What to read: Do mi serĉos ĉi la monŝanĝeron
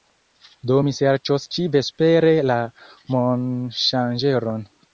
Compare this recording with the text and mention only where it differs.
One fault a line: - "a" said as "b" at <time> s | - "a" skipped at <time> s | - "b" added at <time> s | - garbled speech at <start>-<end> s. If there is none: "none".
- "vespere" added at 1.7 s